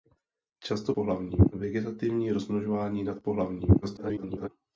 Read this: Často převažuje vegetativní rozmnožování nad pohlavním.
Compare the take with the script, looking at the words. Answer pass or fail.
fail